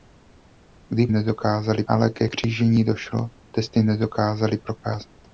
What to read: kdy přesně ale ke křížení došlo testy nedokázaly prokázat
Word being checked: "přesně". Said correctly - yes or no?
no